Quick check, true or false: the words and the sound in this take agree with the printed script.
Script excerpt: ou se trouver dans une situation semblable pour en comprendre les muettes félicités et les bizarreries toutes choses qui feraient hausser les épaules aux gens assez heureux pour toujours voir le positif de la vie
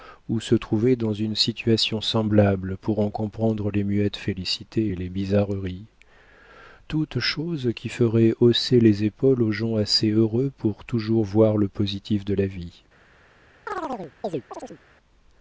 false